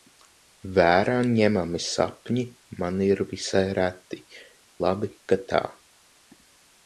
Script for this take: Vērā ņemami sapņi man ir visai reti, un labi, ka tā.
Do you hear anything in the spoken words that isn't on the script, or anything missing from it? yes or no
yes